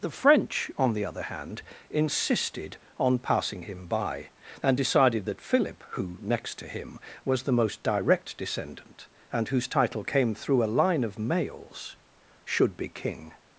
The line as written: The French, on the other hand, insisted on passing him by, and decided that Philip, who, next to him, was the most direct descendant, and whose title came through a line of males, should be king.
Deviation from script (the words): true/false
false